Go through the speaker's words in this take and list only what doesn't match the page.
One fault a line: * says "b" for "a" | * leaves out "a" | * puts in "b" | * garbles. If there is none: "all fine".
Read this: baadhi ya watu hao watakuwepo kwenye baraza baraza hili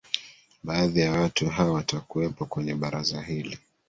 * leaves out "baraza"